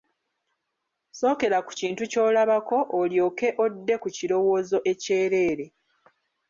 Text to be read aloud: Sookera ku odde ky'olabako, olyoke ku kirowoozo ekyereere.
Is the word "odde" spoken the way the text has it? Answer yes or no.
no